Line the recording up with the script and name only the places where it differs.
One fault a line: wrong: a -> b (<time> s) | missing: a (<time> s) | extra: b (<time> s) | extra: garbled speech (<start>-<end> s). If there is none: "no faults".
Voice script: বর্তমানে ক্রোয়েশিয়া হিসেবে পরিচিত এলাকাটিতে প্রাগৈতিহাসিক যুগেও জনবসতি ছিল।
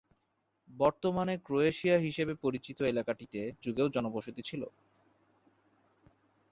missing: প্রাগৈতিহাসিক (3.4 s)